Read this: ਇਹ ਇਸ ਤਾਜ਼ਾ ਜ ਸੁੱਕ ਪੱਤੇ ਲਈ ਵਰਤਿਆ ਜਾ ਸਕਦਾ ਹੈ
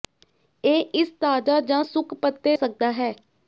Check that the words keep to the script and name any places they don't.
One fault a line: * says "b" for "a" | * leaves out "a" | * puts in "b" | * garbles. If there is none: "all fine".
* leaves out "ਲਈ ਵਰਤਿਆ ਜਾ"